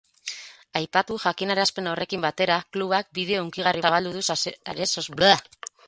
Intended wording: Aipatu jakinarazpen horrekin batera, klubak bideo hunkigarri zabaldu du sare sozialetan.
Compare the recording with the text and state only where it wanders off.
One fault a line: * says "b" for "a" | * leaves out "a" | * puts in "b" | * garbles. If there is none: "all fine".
all fine